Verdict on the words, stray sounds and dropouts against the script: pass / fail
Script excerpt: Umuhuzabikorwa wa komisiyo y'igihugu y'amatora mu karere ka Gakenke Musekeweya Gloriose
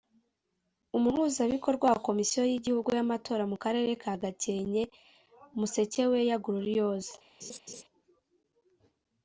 fail